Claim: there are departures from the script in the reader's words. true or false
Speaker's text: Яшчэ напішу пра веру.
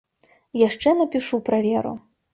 false